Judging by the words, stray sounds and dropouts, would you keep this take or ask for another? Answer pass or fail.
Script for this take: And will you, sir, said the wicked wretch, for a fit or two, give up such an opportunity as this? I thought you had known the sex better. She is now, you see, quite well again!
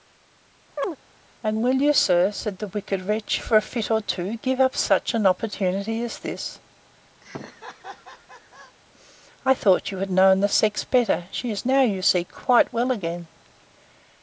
fail